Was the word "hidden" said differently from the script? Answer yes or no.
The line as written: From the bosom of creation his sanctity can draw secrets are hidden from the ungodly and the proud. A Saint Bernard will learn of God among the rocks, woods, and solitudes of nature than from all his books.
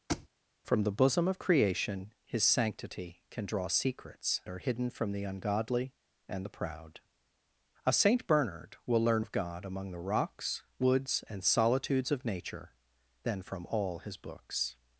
no